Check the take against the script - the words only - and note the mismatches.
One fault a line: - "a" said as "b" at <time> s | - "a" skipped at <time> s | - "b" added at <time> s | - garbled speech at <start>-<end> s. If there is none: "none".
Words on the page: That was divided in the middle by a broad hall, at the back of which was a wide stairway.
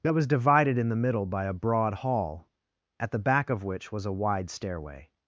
none